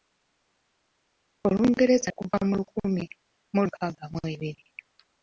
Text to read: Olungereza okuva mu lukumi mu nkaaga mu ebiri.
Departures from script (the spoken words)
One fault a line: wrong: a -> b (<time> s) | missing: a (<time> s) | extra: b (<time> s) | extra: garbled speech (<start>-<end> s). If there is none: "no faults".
no faults